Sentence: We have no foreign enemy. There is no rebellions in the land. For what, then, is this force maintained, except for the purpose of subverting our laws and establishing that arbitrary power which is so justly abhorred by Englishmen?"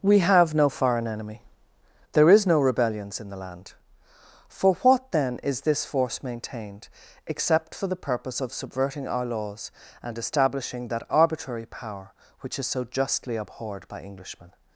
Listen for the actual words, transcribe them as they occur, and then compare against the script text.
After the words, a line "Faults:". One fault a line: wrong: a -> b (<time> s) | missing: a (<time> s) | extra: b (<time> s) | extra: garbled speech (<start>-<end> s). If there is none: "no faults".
We have no foreign enemy. There is no rebellions in the land. For what, then, is this force maintained, except for the purpose of subverting our laws and establishing that arbitrary power which is so justly abhorred by Englishmen?"
Faults:
no faults